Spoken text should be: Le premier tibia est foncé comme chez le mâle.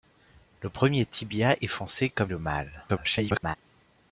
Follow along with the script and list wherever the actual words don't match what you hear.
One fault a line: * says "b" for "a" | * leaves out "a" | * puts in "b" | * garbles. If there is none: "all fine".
* leaves out "chez"
* garbles